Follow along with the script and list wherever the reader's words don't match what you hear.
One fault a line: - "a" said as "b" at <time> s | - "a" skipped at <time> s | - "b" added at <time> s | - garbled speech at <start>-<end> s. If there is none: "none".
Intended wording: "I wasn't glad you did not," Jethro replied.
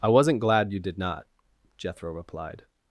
none